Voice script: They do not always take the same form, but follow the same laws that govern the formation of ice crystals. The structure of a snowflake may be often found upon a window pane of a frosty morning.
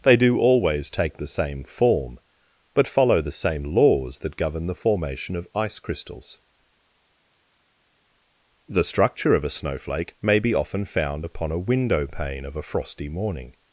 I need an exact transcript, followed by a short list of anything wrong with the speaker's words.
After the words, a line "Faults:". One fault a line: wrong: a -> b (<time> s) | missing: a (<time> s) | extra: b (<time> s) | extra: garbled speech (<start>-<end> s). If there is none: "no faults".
They do always take the same form, but follow the same laws that govern the formation of ice crystals. The structure of a snowflake may be often found upon a window pane of a frosty morning.
Faults:
missing: not (0.4 s)